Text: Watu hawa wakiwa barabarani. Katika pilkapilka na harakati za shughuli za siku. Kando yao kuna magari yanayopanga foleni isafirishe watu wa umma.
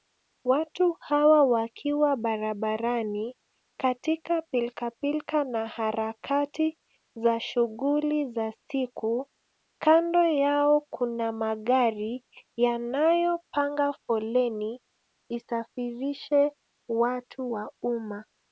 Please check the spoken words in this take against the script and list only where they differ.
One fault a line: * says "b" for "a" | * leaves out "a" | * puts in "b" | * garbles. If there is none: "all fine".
all fine